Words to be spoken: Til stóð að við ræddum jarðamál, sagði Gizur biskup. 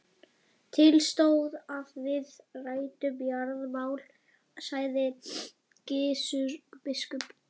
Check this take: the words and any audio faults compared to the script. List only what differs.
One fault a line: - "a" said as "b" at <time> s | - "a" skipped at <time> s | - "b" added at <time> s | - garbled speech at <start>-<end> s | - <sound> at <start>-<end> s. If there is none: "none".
none